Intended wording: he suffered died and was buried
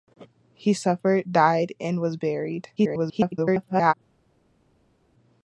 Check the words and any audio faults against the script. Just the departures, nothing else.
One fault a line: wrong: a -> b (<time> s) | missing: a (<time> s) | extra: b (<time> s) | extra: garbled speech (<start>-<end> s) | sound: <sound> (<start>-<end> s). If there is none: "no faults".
extra: garbled speech (2.8-3.9 s)